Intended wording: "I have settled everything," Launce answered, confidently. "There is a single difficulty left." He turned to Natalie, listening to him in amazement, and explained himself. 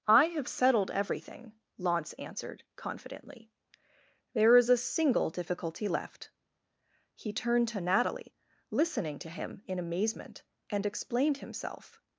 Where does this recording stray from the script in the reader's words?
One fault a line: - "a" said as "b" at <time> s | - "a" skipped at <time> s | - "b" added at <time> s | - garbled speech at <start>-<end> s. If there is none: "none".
none